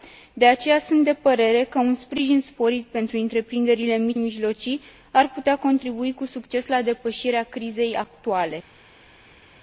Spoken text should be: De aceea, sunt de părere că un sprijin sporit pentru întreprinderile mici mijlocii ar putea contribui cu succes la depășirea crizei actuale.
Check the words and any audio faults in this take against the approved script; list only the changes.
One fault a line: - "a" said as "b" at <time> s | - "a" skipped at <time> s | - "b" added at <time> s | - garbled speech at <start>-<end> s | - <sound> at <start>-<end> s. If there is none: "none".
none